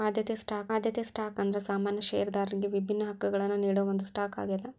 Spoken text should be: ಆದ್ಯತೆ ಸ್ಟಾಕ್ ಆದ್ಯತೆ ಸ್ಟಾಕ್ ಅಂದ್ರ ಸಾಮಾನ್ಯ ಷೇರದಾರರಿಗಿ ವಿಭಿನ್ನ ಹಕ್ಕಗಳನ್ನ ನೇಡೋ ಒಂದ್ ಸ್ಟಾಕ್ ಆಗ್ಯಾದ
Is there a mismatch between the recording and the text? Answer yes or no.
no